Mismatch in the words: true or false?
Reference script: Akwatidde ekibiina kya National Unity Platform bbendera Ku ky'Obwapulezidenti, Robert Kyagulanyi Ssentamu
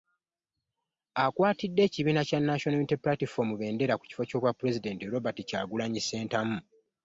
true